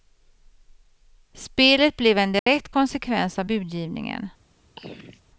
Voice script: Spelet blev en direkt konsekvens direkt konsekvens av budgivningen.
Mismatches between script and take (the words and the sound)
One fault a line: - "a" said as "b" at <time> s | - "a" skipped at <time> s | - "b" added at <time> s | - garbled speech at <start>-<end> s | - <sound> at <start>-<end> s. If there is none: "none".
- dropout at 2.4-2.5 s
- "direkt konsekvens" skipped at 3.4 s
- throat clearing at 4.8-5.2 s